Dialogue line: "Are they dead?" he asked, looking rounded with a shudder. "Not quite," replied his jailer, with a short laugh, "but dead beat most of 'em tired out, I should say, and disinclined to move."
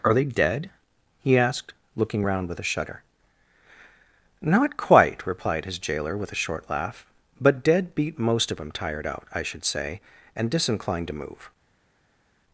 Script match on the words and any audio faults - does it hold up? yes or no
no